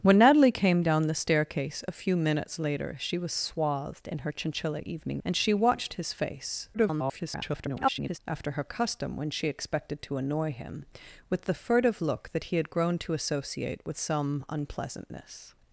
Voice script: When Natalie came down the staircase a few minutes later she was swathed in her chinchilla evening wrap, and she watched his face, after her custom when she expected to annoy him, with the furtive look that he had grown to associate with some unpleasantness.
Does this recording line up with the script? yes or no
no